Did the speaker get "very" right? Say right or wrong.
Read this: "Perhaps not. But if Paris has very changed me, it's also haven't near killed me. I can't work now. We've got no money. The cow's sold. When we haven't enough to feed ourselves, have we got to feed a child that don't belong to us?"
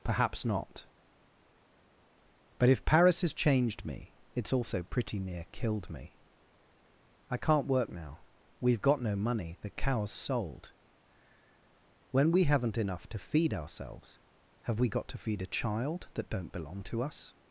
wrong